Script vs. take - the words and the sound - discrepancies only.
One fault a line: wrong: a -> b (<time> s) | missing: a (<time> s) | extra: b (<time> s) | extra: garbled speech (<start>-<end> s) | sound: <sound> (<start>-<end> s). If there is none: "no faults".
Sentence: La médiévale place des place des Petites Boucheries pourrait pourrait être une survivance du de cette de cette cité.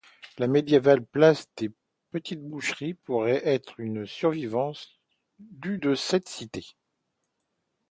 missing: place des (1.7 s)
missing: pourrait (3.5 s)
missing: de cette (6.3 s)